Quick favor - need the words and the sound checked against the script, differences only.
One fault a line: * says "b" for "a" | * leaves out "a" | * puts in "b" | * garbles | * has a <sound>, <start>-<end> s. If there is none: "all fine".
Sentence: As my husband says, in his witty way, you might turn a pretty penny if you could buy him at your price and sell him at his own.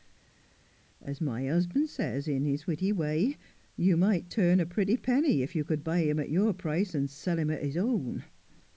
all fine